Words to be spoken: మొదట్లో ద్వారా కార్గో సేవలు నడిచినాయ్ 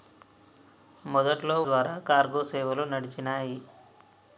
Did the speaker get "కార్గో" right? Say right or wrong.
right